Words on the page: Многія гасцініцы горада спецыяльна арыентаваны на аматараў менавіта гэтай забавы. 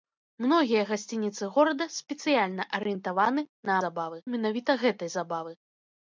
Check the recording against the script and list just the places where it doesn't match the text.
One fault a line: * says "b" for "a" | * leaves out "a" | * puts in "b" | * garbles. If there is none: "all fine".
* says "забавы" for "аматараў"